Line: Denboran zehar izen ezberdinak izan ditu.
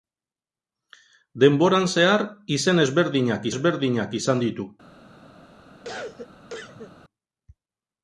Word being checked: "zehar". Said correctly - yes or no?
yes